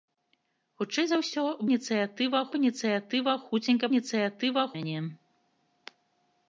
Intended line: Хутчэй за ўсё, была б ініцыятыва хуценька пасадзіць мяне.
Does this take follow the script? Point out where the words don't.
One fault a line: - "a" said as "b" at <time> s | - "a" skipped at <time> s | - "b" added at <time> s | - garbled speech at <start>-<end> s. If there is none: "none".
- "была" said as "ініцыятыва" at 1.7 s
- "пасадзіць" said as "ініцыятыва" at 3.9 s